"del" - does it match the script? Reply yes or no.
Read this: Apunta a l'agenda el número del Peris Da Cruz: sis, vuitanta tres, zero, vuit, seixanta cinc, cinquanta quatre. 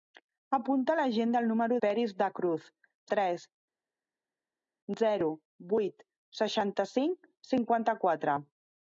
no